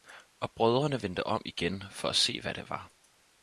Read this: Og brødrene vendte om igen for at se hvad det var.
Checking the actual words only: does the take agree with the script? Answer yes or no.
yes